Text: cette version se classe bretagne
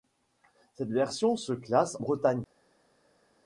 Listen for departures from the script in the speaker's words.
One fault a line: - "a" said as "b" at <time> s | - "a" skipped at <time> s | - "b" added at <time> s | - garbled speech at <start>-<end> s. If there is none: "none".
none